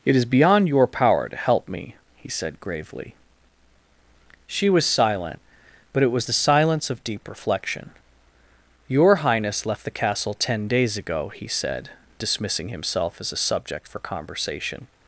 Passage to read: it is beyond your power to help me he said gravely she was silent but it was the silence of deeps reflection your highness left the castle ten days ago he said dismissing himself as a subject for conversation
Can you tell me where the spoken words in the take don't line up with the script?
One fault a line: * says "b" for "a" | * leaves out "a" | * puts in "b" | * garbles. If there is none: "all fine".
* says "deep" for "deeps"